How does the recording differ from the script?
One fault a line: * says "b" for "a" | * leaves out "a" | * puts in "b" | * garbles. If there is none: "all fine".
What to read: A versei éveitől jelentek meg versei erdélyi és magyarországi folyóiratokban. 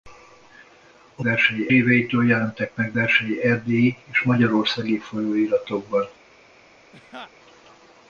all fine